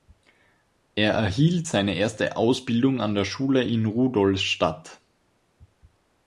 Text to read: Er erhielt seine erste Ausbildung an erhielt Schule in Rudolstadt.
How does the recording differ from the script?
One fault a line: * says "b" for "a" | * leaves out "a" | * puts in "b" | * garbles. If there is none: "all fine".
* says "der" for "erhielt"